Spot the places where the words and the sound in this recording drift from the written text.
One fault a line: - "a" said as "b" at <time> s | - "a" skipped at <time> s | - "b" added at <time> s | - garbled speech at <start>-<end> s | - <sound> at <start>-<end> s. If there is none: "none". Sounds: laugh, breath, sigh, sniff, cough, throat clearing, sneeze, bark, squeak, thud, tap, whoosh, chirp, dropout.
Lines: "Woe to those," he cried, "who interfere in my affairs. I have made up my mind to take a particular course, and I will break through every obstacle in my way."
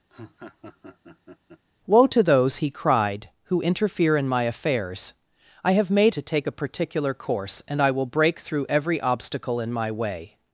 - laugh at 0.1-1.6 s
- "up my mind" skipped at 6.2 s